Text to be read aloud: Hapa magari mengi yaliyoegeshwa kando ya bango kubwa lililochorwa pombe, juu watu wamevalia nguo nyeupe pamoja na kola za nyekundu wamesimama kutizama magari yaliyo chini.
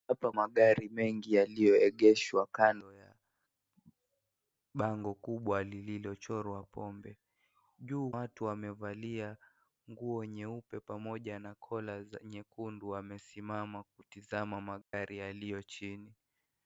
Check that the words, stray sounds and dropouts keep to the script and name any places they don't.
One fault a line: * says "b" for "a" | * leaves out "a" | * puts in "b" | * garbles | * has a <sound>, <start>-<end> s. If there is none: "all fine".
* has a dropout, 14.8-14.9 s